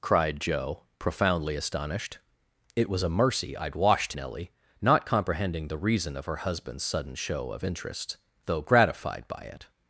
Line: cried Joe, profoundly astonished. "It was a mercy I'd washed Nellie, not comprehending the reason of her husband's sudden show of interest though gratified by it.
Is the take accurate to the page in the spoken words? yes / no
yes